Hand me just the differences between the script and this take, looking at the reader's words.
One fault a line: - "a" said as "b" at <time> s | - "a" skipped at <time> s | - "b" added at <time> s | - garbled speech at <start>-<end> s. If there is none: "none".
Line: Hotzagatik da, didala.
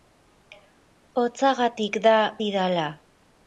none